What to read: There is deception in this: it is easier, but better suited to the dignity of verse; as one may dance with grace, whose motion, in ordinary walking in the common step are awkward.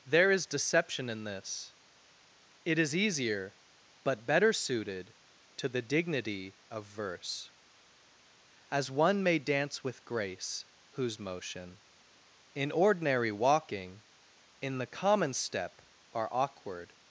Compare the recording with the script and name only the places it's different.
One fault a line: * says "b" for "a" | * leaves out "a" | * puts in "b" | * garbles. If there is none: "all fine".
all fine